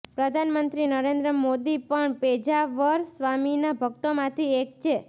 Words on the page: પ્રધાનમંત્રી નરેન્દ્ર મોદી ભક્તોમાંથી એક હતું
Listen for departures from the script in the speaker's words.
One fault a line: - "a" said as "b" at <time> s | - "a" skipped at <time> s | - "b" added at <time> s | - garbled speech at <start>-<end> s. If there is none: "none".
- "પણ પેજાવર સ્વામીના" added at 1.8 s
- "હતું" said as "છે" at 4.8 s